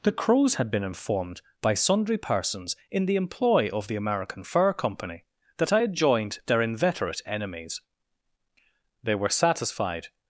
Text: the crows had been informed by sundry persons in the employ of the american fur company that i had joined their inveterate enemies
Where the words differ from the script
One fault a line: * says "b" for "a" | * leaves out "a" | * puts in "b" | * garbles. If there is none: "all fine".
* puts in "they were satisfied"